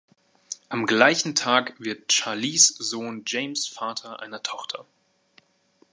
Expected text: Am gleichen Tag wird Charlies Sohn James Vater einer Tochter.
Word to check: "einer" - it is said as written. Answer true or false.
true